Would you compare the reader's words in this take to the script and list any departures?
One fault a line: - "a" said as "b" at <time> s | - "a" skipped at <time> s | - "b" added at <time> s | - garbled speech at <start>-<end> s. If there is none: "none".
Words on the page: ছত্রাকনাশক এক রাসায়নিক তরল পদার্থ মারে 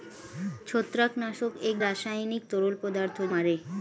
none